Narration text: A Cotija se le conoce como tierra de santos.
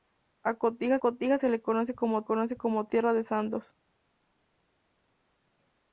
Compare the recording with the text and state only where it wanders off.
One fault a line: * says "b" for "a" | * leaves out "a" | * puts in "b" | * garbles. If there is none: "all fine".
* puts in "Cotija"
* puts in "conoce como"